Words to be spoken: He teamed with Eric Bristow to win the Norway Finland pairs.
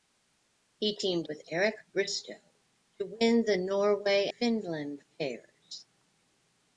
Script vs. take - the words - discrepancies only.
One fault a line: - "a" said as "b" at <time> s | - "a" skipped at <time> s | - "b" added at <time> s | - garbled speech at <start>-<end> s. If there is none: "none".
none